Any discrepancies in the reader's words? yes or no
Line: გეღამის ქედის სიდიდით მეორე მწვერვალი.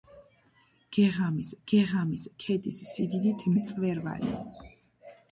yes